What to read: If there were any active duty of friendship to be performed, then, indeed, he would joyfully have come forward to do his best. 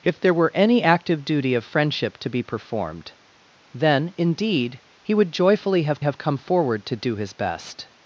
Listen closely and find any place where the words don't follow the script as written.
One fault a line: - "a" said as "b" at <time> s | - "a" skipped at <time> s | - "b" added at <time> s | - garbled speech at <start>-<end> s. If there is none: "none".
- "have" added at 6.0 s